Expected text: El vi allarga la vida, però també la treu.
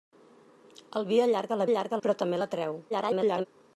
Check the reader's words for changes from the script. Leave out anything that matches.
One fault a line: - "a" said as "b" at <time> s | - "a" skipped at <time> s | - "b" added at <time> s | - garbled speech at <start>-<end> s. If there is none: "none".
- "vida" said as "allarga" at 1.7 s
- garbled speech at 2.9-3.5 s